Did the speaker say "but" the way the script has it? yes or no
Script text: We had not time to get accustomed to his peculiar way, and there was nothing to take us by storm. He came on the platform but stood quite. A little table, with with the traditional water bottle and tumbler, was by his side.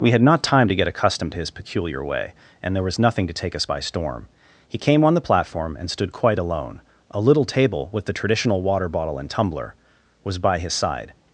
no